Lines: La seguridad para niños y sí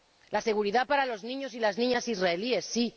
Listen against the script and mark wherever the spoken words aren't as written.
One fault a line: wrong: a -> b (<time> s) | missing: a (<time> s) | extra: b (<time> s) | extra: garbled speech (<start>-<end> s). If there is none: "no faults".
extra: los (1.1 s)
extra: las niñas israelíes (1.6 s)